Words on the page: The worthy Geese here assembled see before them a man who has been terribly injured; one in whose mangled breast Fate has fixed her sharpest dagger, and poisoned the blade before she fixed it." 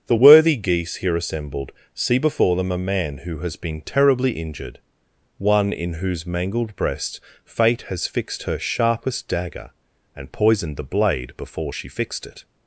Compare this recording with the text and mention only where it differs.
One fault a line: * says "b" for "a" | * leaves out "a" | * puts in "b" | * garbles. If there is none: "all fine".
all fine